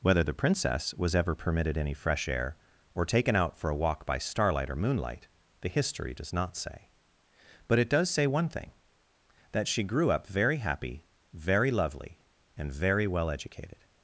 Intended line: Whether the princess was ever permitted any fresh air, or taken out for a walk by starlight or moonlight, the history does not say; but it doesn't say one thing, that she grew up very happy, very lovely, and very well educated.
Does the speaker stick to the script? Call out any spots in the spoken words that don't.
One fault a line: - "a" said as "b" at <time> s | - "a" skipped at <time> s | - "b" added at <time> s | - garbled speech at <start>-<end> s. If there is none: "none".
- "doesn't" said as "does" at 7.9 s